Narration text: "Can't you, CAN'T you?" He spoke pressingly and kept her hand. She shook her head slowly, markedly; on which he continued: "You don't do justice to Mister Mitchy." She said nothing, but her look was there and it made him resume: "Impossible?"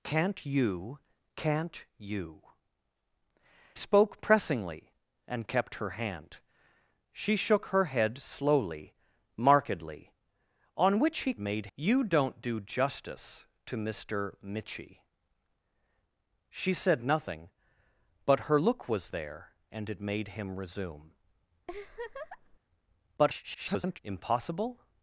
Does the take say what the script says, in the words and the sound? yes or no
no